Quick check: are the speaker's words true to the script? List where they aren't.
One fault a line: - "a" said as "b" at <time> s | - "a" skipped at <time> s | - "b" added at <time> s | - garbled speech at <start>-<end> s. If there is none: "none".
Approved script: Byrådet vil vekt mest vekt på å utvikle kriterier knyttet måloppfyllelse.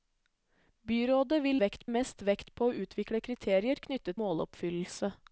none